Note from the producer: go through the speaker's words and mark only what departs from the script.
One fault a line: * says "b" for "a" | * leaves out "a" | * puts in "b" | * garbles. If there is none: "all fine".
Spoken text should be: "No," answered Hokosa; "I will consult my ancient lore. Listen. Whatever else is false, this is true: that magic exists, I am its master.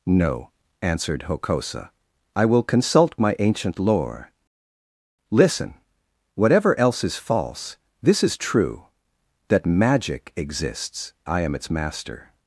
all fine